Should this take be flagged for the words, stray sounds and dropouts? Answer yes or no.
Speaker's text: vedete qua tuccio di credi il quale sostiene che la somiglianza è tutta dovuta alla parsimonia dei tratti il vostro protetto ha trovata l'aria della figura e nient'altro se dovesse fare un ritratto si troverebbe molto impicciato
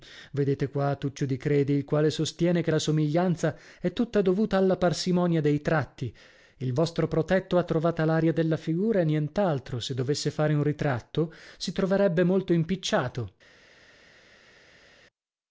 no